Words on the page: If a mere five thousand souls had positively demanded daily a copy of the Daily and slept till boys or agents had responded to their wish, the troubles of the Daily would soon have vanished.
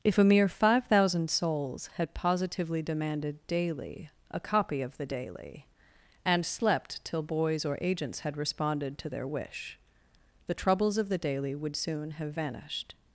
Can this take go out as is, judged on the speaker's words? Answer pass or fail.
pass